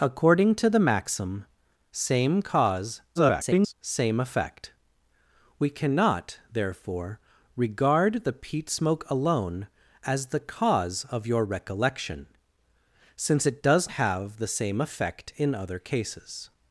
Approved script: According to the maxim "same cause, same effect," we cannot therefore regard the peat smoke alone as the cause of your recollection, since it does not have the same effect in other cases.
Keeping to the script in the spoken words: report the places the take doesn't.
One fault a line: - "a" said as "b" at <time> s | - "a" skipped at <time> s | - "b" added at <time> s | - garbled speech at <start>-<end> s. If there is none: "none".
- garbled speech at 3.1-3.7 s
- "not" skipped at 13.9 s